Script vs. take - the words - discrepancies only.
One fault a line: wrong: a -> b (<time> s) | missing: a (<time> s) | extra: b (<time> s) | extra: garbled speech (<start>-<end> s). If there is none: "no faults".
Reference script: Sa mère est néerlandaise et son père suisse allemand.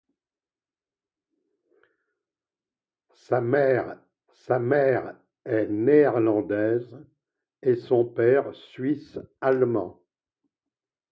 extra: sa mère (4.3 s)